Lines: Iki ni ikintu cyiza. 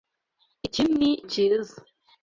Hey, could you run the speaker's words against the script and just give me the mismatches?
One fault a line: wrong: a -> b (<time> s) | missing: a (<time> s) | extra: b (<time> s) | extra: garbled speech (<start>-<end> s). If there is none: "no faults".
missing: ikintu (1.1 s)